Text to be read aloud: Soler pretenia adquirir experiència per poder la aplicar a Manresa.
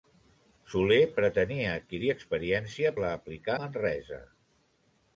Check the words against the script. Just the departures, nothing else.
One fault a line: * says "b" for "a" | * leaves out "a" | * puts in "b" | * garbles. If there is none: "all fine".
* leaves out "per poder"
* leaves out "a"